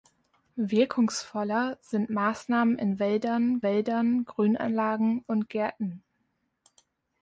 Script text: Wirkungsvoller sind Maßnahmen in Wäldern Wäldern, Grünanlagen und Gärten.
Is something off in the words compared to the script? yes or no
no